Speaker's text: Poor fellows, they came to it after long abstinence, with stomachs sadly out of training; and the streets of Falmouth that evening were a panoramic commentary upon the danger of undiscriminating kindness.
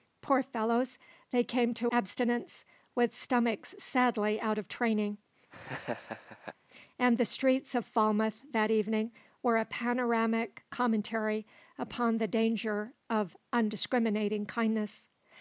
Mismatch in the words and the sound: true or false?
true